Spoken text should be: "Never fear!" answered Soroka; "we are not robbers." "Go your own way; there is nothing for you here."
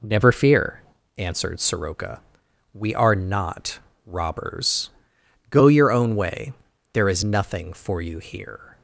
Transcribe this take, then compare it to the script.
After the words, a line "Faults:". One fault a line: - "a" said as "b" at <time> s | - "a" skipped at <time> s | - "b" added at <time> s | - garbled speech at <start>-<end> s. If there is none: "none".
"Never fear!" answered Soroka; "we are not robbers." "Go your own way; there is nothing for you here."
Faults:
none